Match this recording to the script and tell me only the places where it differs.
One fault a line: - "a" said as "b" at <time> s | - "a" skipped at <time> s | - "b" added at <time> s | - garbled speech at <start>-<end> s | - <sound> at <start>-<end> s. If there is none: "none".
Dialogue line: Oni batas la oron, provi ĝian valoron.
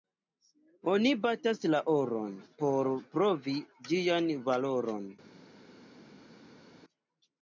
- "por" added at 2.6 s